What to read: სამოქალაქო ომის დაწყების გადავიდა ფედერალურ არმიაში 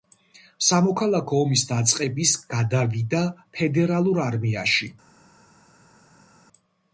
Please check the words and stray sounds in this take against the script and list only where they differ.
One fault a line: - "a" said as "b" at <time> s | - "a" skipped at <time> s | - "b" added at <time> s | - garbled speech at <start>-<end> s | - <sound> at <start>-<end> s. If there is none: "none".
none